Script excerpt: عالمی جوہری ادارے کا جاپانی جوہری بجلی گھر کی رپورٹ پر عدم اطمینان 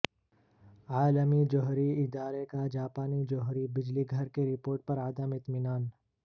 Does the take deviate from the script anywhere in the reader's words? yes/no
no